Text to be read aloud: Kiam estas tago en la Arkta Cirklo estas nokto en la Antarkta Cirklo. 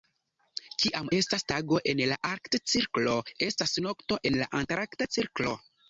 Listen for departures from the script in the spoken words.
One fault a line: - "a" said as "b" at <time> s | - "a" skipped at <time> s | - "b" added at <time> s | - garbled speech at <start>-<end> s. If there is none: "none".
none